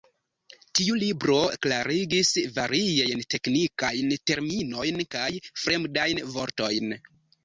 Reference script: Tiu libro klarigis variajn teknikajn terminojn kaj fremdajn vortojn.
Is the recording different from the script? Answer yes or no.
no